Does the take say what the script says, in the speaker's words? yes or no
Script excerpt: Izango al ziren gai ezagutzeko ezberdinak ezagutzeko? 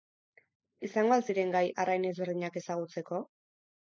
no